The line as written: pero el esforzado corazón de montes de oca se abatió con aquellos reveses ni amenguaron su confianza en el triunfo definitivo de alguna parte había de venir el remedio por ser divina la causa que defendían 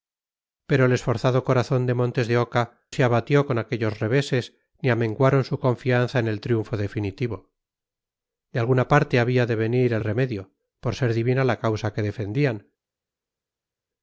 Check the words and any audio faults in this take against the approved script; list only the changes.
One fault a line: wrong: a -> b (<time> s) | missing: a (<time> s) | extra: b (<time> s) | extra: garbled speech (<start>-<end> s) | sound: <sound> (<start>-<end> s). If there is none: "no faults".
no faults